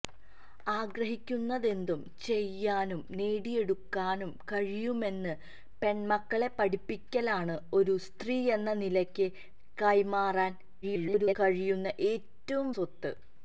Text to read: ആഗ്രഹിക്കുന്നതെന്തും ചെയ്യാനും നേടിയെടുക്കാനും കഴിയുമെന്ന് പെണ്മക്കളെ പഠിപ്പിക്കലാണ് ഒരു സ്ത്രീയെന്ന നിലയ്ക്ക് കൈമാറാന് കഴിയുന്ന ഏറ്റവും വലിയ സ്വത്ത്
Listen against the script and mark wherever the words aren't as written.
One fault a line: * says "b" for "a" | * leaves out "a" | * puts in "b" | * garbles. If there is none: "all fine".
* garbles
* leaves out "വലിയ"